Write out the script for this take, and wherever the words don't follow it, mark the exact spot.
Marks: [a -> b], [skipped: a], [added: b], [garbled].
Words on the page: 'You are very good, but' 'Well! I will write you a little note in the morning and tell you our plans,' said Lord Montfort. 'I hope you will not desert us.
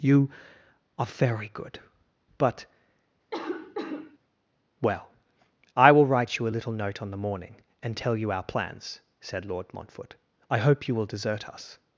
'You are very good, but' 'Well! I will write you a little note [in -> on] the morning and tell you our plans,' said Lord Montfort. 'I hope you will [skipped: not] desert us.